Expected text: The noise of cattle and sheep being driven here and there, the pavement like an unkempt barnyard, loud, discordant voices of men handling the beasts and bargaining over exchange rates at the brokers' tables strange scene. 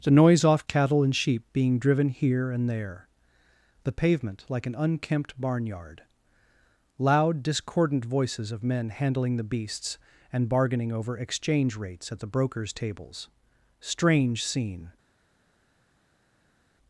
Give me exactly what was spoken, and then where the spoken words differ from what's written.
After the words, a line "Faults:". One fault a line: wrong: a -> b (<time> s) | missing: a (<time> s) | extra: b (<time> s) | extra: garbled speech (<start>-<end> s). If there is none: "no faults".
The noise off cattle and sheep being driven here and there, the pavement like an unkempt barnyard, loud, discordant voices of men handling the beasts and bargaining over exchange rates at the brokers' tables strange scene.
Faults:
wrong: of -> off (0.4 s)